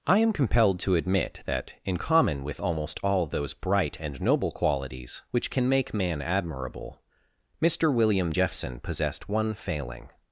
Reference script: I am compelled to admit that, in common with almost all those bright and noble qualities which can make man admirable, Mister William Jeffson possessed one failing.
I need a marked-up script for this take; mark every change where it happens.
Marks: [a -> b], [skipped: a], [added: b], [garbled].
I am compelled to admit that, in common with almost all those bright and noble qualities which can make man admirable, Mister William Jeffson possessed one failing.